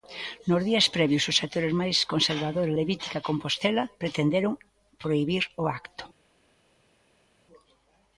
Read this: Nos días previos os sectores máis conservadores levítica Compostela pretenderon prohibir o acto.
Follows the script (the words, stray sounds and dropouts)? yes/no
yes